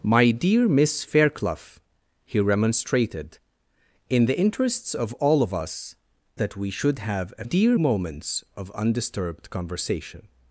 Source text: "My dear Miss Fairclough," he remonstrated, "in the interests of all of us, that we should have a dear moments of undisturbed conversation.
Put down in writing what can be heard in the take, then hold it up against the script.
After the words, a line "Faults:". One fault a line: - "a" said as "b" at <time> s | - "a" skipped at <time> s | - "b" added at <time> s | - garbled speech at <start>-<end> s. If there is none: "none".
"My dear Miss Fairclough," he remonstrated, "in the interests of all of us, that we should have a dear moments of undisturbed conversation.
Faults:
none